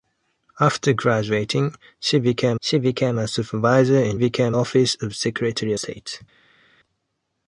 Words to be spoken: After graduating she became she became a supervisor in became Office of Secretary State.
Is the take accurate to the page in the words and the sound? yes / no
yes